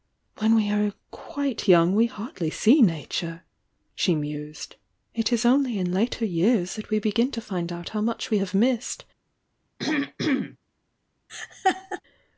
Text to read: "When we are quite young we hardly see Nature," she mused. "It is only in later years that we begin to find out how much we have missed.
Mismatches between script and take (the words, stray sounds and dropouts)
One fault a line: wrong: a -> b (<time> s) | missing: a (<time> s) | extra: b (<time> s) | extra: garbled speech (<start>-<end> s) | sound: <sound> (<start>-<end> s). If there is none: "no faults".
sound: throat clearing (9.8-10.6 s)
sound: laugh (11.3-12.0 s)